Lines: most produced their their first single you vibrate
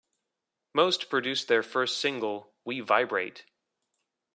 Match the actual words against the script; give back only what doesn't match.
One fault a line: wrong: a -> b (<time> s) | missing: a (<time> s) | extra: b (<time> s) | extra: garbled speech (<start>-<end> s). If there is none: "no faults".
missing: their (1.6 s)
wrong: you -> we (2.6 s)